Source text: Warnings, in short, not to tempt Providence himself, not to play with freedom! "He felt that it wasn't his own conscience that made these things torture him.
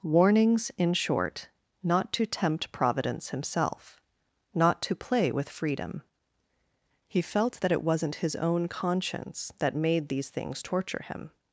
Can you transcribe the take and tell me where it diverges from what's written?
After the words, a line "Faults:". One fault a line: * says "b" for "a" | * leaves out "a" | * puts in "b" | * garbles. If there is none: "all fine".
Warnings, in short, not to tempt Providence himself, not to play with freedom! "He felt that it wasn't his own conscience that made these things torture him.
Faults:
all fine